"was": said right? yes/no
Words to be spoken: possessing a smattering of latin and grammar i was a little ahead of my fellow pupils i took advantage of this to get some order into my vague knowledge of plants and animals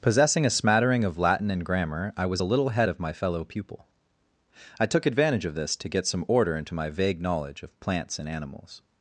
yes